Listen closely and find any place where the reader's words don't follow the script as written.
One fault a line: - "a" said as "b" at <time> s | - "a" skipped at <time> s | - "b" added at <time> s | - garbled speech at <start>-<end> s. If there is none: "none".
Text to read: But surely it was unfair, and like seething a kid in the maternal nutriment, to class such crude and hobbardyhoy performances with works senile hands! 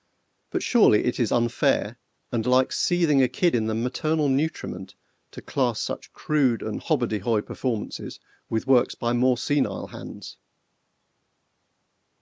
- "was" said as "is" at 1.2 s
- "by more" added at 8.9 s